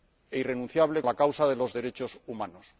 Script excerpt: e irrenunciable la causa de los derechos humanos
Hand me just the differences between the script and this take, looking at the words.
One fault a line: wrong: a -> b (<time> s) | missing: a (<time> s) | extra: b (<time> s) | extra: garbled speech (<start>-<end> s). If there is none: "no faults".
no faults